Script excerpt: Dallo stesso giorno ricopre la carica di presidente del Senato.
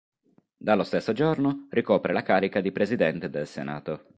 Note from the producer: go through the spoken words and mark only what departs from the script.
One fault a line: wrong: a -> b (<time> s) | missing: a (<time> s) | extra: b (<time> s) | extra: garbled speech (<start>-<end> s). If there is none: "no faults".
no faults